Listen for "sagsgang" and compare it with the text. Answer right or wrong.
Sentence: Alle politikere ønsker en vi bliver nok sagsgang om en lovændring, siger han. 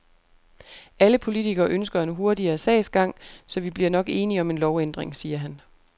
wrong